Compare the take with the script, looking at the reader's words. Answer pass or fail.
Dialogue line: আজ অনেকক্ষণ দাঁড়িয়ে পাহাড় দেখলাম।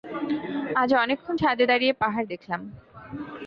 fail